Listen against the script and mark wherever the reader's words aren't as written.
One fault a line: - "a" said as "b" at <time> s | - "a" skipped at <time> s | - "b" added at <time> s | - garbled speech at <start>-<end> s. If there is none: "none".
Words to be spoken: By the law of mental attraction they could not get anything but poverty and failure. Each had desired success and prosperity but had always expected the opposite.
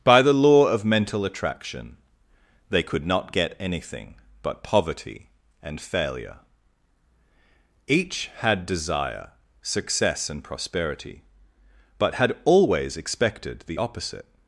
- "desired" said as "desire" at 8.7 s